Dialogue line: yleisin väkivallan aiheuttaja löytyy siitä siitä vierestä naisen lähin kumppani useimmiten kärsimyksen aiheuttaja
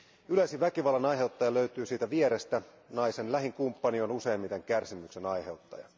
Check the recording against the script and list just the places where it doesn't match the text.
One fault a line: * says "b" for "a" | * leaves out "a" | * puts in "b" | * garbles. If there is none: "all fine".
* leaves out "siitä"
* puts in "on"